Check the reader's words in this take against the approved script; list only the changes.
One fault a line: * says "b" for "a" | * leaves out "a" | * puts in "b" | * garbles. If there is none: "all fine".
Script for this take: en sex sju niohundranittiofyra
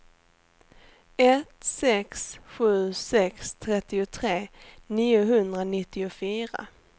* says "ett" for "en"
* puts in "sex trettiotre"